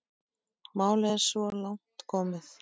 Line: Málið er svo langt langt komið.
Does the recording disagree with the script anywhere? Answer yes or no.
yes